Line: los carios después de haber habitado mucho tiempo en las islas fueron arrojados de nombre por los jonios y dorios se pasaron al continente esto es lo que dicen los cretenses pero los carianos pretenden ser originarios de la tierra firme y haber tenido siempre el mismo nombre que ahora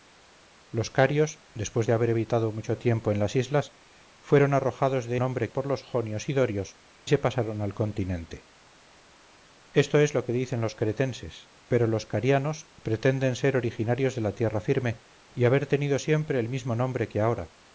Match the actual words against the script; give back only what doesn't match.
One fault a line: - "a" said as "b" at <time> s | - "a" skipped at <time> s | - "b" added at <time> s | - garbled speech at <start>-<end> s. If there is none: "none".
none